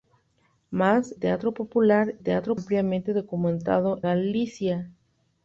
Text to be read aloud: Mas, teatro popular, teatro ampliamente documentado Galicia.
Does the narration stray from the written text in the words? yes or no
no